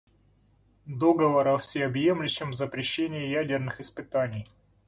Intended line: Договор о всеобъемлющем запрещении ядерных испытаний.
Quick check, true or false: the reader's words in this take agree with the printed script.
true